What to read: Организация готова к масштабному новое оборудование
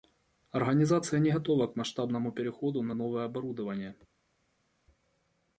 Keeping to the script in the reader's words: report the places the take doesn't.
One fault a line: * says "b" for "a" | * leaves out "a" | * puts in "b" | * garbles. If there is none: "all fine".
* puts in "не"
* puts in "переходу на"